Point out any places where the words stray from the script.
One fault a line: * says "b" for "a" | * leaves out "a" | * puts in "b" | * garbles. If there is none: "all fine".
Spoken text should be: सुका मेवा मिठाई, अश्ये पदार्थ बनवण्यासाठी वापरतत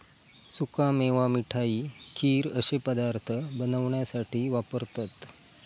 * puts in "खीर"